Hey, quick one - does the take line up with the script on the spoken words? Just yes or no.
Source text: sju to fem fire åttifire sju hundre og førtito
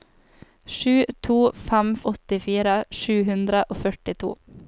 no